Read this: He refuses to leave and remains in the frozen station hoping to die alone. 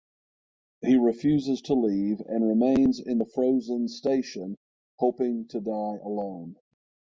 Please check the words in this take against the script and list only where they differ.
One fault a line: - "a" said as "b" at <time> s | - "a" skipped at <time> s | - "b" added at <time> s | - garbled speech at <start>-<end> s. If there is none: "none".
none